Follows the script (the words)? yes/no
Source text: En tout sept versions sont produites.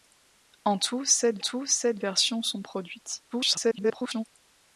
no